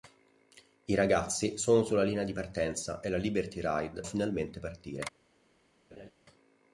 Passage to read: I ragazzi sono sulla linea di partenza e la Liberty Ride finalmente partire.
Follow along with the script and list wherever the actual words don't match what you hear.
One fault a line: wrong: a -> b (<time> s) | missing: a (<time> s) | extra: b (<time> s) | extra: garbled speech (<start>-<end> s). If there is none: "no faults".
no faults